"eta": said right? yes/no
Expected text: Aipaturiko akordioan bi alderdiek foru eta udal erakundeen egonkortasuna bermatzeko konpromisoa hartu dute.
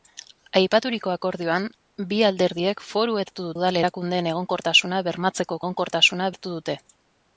no